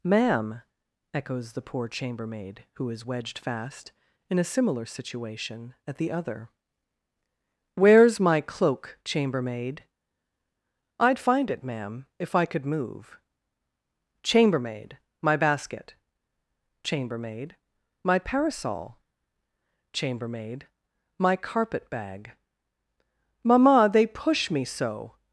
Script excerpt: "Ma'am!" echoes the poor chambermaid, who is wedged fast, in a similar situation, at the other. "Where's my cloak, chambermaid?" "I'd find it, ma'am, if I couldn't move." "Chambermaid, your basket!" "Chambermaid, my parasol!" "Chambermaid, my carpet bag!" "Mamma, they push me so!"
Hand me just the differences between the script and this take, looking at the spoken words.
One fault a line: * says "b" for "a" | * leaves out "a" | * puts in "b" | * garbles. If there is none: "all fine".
* says "could" for "couldn't"
* says "my" for "your"